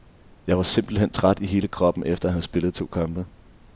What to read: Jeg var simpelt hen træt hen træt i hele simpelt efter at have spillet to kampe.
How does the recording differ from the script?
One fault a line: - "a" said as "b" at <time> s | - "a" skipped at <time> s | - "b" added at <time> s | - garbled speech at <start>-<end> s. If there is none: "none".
- "hen træt" skipped at 1.4 s
- "simpelt" said as "kroppen" at 1.7 s